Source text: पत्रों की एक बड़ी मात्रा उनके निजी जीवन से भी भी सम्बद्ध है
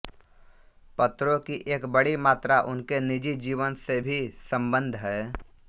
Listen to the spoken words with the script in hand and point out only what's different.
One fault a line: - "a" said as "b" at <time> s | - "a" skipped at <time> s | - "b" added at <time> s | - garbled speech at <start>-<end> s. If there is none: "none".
- "भी" skipped at 4.3 s